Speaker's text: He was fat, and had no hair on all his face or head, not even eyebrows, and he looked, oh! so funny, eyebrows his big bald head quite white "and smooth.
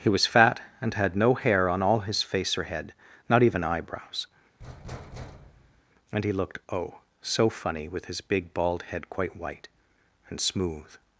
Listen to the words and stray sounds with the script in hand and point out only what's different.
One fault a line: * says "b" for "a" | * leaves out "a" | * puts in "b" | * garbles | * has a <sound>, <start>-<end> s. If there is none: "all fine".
* has a thud, 4.6-5.8 s
* says "with" for "eyebrows"